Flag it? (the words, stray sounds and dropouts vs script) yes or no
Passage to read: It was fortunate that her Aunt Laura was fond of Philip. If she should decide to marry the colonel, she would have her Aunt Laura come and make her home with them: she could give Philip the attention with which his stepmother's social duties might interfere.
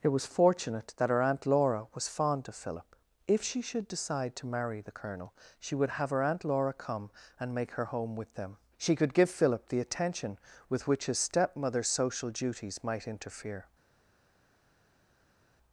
no